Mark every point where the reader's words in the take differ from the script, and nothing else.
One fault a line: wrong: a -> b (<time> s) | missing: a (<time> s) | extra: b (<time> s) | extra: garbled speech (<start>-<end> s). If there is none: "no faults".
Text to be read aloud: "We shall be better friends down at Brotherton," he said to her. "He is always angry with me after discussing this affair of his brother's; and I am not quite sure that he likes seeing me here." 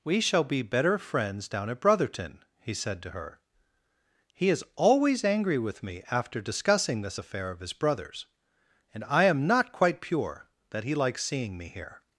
wrong: sure -> pure (10.0 s)